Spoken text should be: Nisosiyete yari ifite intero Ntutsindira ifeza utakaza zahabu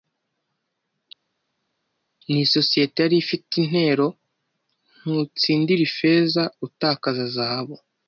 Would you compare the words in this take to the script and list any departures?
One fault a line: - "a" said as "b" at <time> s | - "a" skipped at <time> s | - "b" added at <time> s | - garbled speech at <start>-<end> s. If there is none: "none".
none